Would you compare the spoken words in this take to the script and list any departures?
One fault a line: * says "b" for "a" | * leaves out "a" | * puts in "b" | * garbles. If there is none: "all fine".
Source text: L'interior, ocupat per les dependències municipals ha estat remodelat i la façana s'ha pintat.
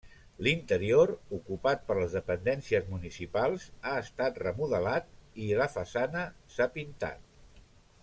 all fine